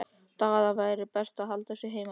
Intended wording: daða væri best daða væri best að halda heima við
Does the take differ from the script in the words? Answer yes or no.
yes